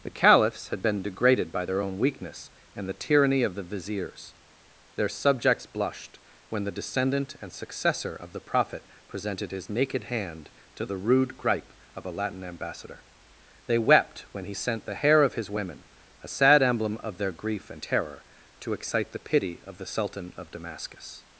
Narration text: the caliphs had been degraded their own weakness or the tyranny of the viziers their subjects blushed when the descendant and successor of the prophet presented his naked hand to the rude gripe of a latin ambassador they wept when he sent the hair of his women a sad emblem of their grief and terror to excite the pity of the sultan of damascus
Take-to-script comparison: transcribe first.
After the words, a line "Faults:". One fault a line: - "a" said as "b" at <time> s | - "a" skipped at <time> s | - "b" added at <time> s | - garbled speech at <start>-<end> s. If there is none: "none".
the caliphs had been degraded by their own weakness and the tyranny of the viziers their subjects blushed when the descendant and successor of the prophet presented his naked hand to the rude gripe of a latin ambassador they wept when he sent the hair of his women a sad emblem of their grief and terror to excite the pity of the sultan of damascus
Faults:
- "by" added at 1.5 s
- "or" said as "and" at 2.8 s